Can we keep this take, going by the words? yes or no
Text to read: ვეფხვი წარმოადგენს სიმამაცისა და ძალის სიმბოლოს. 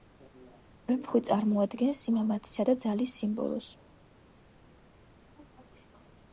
yes